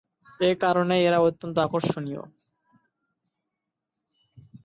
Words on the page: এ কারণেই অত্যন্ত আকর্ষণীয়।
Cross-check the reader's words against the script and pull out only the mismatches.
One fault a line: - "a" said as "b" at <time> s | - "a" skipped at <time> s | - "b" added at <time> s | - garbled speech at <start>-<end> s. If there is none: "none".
- "এরা" added at 1.1 s